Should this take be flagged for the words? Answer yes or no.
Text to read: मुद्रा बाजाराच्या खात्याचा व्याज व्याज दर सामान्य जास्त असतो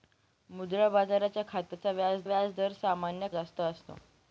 no